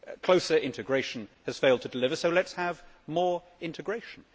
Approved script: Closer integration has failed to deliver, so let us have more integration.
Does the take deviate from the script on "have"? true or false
false